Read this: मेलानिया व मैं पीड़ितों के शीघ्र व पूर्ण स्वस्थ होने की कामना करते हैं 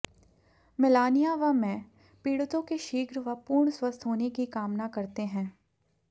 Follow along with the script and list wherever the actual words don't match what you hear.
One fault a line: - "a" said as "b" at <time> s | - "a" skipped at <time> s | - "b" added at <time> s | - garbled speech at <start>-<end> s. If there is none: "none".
none